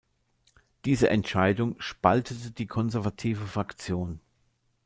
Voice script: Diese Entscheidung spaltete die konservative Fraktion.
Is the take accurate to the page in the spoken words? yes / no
yes